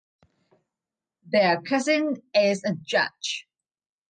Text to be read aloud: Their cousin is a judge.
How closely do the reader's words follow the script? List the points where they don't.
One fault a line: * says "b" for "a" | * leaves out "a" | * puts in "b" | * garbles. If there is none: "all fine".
all fine